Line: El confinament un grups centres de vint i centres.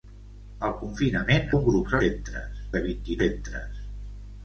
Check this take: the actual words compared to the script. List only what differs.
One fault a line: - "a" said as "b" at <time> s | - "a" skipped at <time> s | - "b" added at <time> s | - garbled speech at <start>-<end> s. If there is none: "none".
none